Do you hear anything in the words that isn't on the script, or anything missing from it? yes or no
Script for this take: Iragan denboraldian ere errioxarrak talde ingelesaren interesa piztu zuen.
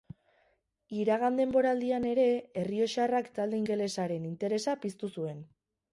no